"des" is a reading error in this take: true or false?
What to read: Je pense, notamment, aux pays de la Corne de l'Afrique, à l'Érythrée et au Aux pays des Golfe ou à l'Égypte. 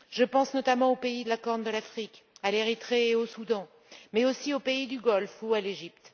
true